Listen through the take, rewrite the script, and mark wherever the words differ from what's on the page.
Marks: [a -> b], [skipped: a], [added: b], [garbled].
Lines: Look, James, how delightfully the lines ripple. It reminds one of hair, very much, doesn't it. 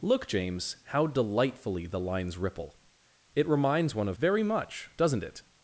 Look, James, how delightfully the lines ripple. It reminds one of [skipped: hair,] very much, doesn't it.